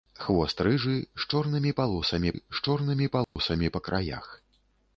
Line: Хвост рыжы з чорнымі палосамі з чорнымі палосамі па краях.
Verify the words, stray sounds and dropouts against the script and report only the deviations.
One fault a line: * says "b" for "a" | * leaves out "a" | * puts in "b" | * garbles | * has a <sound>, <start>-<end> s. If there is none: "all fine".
* has a dropout, 3.2-3.4 s